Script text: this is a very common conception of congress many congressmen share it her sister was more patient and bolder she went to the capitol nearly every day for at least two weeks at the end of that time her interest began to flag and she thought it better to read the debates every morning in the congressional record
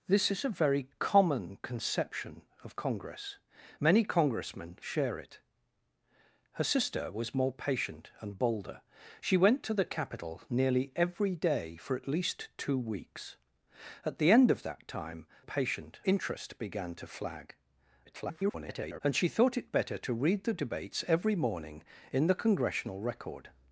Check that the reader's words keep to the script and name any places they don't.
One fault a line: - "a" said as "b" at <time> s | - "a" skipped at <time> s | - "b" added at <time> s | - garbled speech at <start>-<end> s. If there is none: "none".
- "her" said as "patient" at 15.4 s
- garbled speech at 18.0-19.0 s